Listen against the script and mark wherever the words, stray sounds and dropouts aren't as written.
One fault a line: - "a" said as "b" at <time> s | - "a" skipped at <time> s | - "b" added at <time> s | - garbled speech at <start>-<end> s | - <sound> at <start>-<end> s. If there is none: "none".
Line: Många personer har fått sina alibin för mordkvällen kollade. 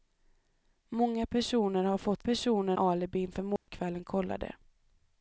- "sina" said as "personer" at 2.2 s
- dropout at 3.6-3.7 s